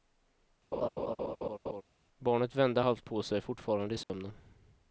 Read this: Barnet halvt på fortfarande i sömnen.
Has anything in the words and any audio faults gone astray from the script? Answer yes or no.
yes